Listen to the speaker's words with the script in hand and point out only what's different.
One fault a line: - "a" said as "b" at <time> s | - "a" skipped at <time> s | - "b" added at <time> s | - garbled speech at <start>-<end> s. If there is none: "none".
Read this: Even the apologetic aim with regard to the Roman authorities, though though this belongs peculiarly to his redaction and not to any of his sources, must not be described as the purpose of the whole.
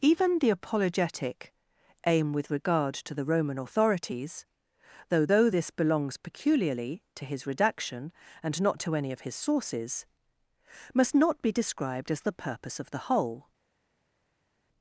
none